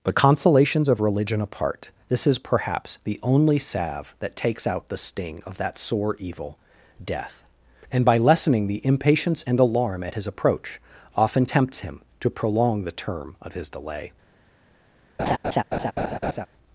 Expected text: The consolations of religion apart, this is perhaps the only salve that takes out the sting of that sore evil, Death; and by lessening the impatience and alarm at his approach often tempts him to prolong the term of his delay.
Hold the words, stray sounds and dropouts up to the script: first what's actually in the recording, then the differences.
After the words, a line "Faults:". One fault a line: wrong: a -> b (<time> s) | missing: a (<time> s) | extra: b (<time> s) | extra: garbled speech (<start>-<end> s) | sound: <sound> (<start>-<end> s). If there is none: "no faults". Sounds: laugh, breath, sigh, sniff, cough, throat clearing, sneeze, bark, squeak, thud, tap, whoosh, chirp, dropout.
But consolations of religion apart, this is perhaps the only salve that takes out the sting of that sore evil, Death; and by lessening the impatience and alarm at his approach often tempts him to prolong the term of his delay.
Faults:
wrong: The -> But (0.0 s)
sound: laugh (15.2-16.5 s)